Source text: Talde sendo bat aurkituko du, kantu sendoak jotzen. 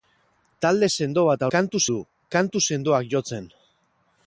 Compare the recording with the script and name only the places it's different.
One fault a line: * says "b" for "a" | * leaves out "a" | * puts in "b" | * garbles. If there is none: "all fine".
* says "kantu" for "aurkituko"